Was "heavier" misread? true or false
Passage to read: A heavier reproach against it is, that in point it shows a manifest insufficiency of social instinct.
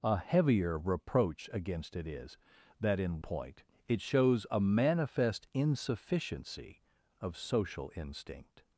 false